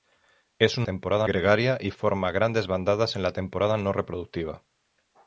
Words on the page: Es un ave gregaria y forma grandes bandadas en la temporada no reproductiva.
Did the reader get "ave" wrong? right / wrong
wrong